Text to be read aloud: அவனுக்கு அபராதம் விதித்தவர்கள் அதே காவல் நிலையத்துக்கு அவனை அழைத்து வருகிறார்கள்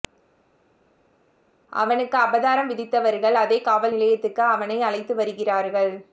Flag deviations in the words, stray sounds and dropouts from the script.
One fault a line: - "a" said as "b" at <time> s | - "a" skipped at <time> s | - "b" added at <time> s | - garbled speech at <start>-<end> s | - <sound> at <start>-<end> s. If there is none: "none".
none